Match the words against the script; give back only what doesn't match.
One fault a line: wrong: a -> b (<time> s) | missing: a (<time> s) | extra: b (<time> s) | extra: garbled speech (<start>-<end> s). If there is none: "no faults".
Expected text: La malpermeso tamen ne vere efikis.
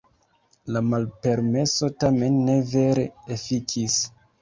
no faults